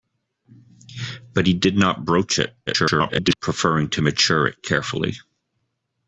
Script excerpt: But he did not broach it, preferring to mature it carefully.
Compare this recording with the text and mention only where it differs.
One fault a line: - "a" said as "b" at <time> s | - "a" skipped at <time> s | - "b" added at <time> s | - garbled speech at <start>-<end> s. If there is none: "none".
- garbled speech at 2.7-3.4 s